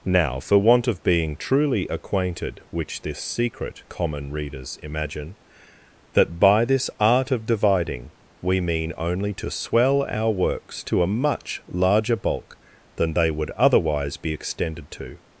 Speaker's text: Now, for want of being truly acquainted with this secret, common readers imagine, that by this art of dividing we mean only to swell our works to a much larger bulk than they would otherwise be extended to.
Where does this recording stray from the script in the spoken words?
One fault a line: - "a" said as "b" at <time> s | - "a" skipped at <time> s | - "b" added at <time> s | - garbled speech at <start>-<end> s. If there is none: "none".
- "with" said as "which" at 2.7 s